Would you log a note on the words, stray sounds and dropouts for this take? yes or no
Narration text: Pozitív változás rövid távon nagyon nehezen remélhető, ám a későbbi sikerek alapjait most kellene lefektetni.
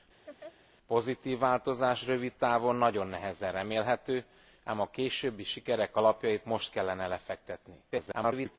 yes